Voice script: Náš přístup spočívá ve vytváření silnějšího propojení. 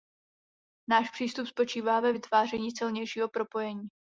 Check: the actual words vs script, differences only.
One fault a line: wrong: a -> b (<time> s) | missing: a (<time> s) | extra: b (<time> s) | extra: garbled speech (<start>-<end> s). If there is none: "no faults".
no faults